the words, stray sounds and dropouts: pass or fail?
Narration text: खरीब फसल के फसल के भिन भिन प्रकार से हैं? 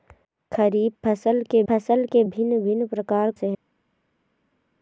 pass